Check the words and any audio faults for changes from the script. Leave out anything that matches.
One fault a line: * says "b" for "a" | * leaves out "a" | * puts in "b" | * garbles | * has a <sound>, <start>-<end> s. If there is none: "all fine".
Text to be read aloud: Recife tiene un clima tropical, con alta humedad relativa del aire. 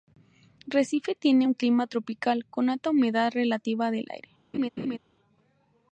* has a laugh, 4.5-5.0 s